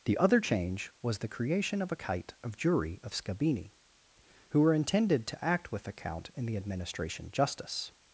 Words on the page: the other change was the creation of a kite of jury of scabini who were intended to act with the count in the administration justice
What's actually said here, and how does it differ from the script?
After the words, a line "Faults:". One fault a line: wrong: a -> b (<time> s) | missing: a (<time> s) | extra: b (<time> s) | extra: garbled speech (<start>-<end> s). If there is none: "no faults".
the other change was the creation of a kite of jury of scabini who were intended to act with the count in the administration justice
Faults:
no faults